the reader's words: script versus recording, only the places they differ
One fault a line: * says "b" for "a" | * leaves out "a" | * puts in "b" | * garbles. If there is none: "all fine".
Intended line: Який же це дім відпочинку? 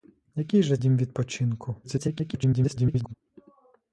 * leaves out "це"
* garbles